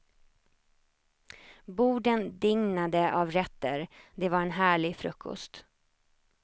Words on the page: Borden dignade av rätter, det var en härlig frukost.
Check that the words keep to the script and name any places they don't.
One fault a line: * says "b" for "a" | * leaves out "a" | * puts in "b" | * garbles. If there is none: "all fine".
all fine